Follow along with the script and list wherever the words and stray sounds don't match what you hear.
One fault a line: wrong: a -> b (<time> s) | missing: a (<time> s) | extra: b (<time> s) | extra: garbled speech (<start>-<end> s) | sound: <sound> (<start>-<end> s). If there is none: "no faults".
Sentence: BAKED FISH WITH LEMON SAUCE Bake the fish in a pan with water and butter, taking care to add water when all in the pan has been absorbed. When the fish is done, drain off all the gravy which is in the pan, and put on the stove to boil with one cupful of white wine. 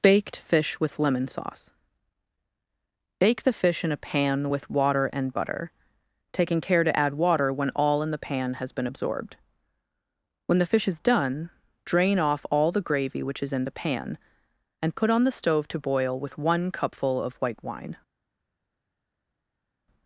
no faults